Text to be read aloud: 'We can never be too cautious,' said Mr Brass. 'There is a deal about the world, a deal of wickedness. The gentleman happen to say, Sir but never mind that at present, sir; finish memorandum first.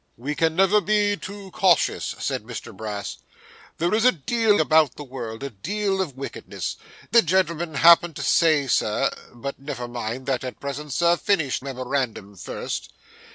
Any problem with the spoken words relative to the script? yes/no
no